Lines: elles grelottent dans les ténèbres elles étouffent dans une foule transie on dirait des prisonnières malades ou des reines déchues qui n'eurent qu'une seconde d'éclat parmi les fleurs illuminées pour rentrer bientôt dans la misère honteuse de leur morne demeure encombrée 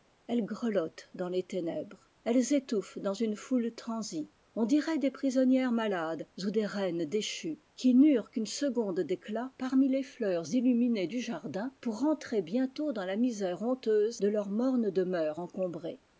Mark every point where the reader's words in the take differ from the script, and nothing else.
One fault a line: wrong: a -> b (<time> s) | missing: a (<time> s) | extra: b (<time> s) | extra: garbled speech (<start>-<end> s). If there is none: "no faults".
extra: du jardin (11.1 s)